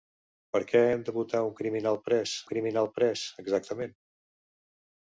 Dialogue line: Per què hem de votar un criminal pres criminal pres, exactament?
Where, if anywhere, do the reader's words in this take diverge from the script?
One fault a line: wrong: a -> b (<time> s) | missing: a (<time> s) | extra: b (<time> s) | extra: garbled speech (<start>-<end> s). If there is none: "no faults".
no faults